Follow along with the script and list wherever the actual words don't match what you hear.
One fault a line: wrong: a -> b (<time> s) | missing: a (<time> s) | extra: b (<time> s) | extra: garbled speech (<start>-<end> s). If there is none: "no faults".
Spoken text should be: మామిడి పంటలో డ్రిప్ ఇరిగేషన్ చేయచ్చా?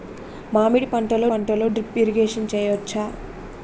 extra: పంటలో (1.2 s)